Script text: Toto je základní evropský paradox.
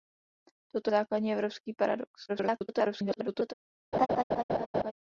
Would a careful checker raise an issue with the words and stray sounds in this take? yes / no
yes